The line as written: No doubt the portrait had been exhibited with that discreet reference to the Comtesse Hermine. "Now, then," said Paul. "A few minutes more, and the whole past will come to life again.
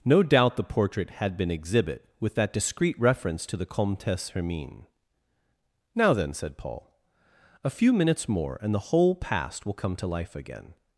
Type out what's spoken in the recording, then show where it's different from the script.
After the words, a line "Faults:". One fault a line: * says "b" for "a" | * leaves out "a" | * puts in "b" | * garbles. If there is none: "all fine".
No doubt the portrait had been exhibit with that discreet reference to the Comtesse Hermine. "Now, then," said Paul. "A few minutes more, and the whole past will come to life again.
Faults:
* says "exhibit" for "exhibited"